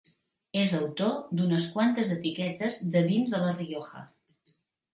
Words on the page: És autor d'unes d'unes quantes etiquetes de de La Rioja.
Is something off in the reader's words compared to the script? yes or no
yes